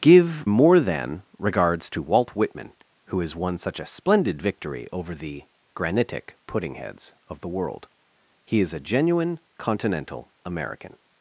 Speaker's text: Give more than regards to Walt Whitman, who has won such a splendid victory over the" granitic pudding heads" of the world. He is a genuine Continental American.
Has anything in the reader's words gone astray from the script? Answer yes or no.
no